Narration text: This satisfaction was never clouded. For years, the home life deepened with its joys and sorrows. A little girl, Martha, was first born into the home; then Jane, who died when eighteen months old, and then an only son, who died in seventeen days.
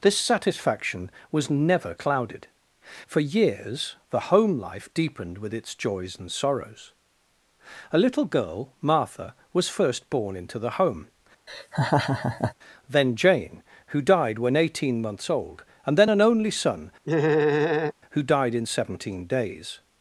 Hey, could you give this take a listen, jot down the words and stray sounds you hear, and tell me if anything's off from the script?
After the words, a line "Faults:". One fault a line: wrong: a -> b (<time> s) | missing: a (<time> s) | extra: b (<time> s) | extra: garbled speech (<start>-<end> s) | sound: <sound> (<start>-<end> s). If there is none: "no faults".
This satisfaction was never clouded. For years, the home life deepened with its joys and sorrows. A little girl, Martha, was first born into the home; then Jane, who died when eighteen months old, and then an only son, who died in seventeen days.
Faults:
sound: laugh (11.5-12.5 s)
sound: laugh (17.0-17.9 s)